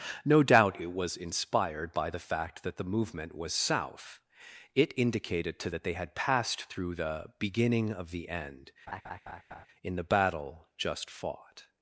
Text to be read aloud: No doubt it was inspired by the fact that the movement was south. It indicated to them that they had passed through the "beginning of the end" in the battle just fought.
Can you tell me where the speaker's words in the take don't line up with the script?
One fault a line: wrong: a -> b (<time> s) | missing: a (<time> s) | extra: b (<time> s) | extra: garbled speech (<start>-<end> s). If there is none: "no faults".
missing: them (5.7 s)